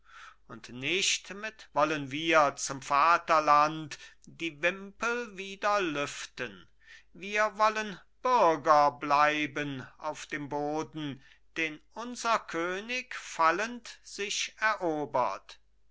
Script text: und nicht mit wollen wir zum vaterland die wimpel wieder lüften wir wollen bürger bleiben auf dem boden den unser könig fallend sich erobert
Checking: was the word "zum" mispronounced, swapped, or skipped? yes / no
no